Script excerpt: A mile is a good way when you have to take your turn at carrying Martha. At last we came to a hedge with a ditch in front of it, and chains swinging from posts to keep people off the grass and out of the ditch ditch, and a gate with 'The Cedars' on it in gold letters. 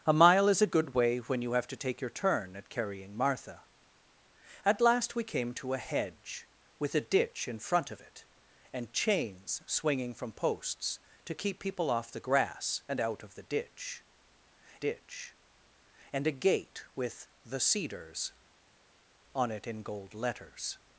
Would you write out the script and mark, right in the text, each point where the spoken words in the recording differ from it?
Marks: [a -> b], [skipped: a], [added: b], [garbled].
A mile is a good way when you have to take your turn at carrying Martha. At last we came to a hedge with a ditch in front of it, and chains swinging from posts to keep people off the grass and out of the ditch ditch, and a gate with 'The Cedars' on it in gold letters.